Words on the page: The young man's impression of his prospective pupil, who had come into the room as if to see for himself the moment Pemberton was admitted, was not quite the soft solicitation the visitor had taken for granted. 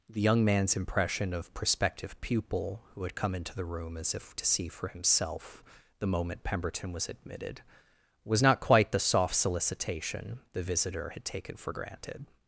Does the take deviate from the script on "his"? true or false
true